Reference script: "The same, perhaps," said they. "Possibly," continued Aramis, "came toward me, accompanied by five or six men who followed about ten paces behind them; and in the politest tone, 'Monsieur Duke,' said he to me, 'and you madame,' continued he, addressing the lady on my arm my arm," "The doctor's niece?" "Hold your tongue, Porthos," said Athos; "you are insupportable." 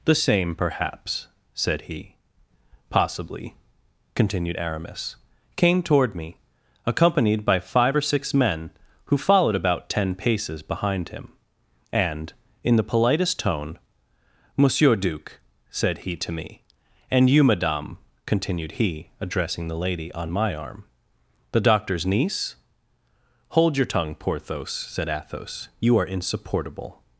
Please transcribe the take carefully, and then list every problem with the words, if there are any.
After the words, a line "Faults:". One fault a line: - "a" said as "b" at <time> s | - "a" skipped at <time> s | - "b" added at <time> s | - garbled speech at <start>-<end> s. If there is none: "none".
"The same, perhaps," said he. "Possibly," continued Aramis, "came toward me, accompanied by five or six men who followed about ten paces behind him; and in the politest tone, 'Monsieur Duke,' said he to me, 'and you madame,' continued he, addressing the lady on my arm," "The doctor's niece?" "Hold your tongue, Porthos," said Athos; "you are insupportable."
Faults:
- "they" said as "he" at 1.8 s
- "them" said as "him" at 11.1 s
- "my arm" skipped at 20.8 s